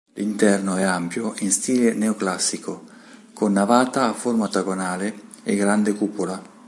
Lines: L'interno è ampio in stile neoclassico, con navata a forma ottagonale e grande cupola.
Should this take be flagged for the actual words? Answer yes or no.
no